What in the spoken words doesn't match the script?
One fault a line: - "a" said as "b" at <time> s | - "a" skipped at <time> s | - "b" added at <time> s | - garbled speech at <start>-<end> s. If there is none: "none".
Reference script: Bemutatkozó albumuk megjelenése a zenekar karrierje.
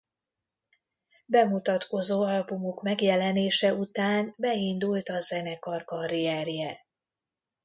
- "után beindult" added at 3.7 s